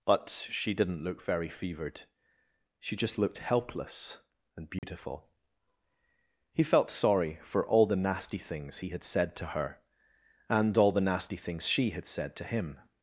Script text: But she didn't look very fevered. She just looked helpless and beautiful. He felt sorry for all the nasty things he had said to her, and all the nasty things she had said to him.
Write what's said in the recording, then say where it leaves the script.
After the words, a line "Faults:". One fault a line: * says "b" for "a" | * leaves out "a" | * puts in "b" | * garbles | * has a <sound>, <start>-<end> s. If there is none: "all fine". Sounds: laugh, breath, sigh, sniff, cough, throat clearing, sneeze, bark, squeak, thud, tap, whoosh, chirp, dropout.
But she didn't look very fevered. She just looked helpless and beautiful. He felt sorry for all the nasty things he had said to her, and all the nasty things she had said to him.
Faults:
* has a dropout, 4.8-4.8 s